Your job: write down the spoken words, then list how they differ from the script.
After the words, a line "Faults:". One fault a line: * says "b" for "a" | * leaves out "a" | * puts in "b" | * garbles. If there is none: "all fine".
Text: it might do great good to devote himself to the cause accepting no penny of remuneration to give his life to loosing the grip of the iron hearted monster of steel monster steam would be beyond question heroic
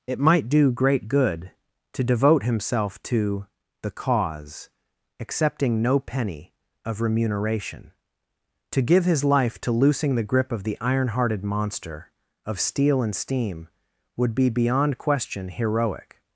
it might do great good to devote himself to the cause accepting no penny of remuneration to give his life to loosing the grip of the iron hearted monster of steel and steam would be beyond question heroic
Faults:
* says "and" for "monster"